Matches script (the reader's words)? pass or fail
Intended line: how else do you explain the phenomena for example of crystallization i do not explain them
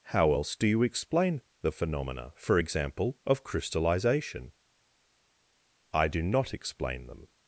pass